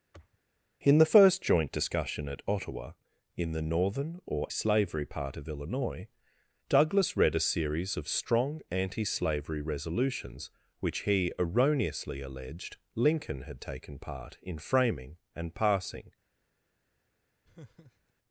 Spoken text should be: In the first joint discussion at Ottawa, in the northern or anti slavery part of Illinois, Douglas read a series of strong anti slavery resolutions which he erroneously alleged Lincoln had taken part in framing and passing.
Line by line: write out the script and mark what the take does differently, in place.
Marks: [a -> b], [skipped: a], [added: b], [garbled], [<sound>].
[sniff] In the first joint discussion at Ottawa, in the northern or [skipped: anti] slavery part of Illinois, Douglas read a series of strong anti slavery resolutions which he erroneously alleged Lincoln had taken part in framing and passing. [laugh]